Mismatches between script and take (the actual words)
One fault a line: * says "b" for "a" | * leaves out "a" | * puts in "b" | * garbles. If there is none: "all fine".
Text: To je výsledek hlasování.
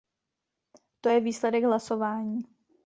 all fine